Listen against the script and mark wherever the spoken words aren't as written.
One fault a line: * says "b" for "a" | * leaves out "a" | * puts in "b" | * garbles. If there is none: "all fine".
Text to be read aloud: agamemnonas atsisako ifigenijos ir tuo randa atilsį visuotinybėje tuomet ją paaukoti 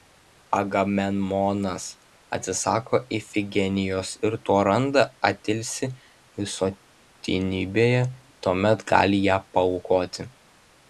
* puts in "gali"